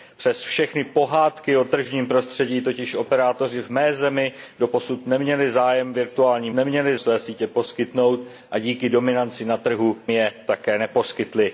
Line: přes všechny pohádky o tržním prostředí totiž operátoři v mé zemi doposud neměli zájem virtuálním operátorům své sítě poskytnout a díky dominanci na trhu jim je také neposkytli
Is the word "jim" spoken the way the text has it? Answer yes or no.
no